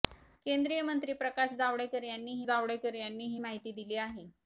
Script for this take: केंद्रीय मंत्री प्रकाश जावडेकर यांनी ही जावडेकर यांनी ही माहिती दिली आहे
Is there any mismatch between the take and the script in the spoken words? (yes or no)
no